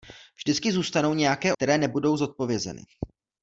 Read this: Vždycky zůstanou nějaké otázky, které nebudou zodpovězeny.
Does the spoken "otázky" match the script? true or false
false